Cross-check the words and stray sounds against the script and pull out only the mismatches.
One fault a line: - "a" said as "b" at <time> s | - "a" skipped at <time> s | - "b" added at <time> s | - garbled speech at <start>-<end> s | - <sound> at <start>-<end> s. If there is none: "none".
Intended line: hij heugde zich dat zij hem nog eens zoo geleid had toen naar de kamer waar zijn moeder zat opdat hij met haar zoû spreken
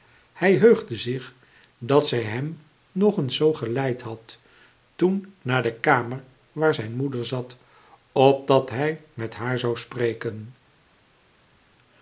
none